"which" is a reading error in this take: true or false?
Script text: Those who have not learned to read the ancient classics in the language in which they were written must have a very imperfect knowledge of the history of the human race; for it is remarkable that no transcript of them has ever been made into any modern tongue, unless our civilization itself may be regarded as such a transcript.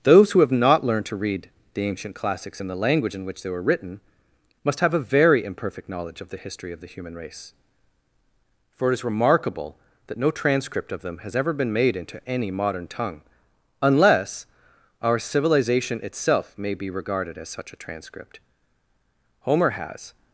false